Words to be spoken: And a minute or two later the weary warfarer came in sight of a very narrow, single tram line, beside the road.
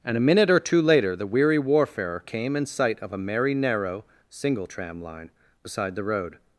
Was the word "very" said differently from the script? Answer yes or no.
yes